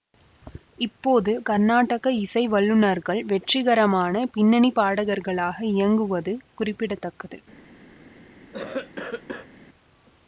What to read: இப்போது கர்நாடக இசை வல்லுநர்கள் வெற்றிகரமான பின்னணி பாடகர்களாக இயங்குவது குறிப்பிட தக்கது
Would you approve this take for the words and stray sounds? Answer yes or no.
no